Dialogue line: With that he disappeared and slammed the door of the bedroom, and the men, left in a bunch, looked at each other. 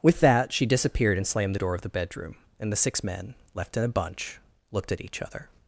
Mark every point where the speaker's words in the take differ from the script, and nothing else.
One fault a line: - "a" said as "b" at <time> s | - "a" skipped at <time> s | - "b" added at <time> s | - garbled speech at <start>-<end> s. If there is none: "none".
- "he" said as "she" at 0.5 s
- "six" added at 2.8 s